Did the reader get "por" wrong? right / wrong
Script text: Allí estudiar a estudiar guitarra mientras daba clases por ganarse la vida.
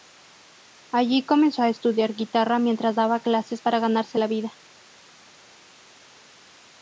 wrong